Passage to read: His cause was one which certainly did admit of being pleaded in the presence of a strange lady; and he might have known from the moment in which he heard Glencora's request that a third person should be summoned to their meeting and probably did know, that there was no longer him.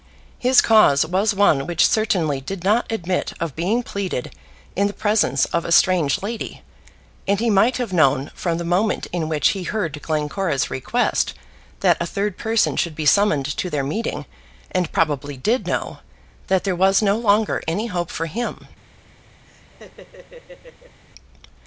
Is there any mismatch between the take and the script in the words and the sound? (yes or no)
yes